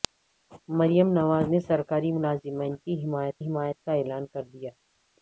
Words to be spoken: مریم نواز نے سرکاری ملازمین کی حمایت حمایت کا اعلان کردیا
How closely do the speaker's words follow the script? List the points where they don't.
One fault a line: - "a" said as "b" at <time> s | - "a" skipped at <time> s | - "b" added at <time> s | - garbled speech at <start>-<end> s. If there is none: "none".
none